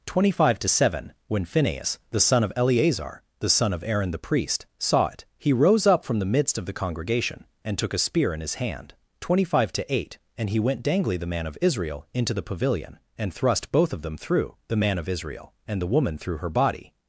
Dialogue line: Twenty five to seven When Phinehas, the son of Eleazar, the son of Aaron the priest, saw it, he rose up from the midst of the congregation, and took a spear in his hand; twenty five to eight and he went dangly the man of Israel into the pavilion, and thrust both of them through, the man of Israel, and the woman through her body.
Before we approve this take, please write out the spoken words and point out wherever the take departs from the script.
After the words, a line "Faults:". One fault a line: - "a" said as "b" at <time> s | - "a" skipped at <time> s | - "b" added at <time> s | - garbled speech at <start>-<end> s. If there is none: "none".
Twenty five to seven When Phinehas, the son of Eleazar, the son of Aaron the priest, saw it, he rose up from the midst of the congregation, and took a spear in his hand; twenty five to eight and he went dangly the man of Israel into the pavilion, and thrust both of them through, the man of Israel, and the woman through her body.
Faults:
none